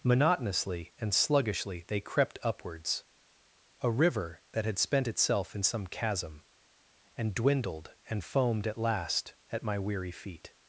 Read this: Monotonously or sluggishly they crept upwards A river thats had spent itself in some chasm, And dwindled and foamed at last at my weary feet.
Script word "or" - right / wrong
wrong